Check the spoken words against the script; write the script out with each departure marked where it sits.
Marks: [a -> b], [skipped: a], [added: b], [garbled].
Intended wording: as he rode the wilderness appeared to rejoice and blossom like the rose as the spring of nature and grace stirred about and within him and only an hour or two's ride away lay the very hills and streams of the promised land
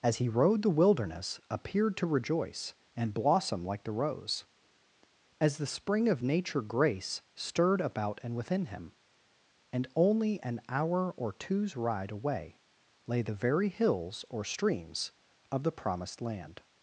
as he rode the wilderness appeared to rejoice and blossom like the rose as the spring of nature [skipped: and] grace stirred about and within him and only an hour or two's ride away lay the very hills [and -> or] streams of the promised land